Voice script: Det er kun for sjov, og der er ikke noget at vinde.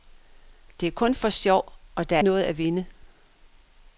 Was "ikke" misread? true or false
true